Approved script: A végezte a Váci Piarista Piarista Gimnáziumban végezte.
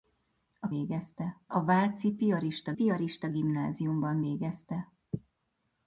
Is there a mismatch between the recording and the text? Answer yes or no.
no